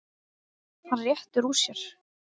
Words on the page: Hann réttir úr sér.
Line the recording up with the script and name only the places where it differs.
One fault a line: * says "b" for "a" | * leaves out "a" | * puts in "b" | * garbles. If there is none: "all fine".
all fine